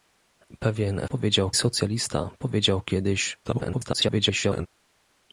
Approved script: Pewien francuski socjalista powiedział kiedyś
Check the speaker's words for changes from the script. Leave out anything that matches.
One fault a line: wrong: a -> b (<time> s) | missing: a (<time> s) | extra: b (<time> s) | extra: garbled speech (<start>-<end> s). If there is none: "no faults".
wrong: francuski -> powiedział (1.1 s)
extra: garbled speech (3.4-4.7 s)